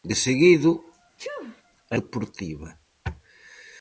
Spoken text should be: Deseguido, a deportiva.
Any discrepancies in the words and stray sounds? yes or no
yes